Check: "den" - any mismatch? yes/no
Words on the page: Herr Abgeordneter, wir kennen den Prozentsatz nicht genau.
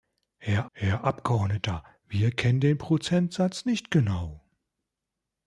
no